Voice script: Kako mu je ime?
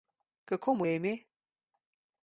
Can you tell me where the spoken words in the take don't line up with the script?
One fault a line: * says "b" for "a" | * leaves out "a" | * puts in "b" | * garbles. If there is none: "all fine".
all fine